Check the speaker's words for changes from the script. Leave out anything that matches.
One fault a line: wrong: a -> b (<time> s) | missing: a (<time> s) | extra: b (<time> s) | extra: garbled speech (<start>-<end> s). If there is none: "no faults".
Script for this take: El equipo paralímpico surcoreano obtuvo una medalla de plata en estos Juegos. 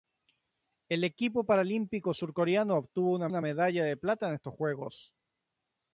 extra: una (3.3 s)